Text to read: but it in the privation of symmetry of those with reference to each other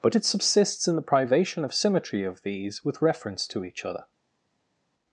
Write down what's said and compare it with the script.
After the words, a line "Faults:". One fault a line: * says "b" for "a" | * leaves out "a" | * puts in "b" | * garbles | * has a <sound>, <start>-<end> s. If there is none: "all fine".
but it subsists in the privation of symmetry of these with reference to each other
Faults:
* puts in "subsists"
* says "these" for "those"